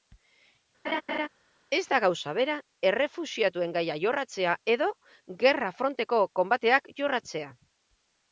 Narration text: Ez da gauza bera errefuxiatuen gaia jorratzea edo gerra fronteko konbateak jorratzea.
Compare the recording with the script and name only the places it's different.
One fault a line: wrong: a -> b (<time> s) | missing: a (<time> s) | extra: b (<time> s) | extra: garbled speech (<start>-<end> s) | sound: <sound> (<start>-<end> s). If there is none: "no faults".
sound: laugh (0.8-1.3 s)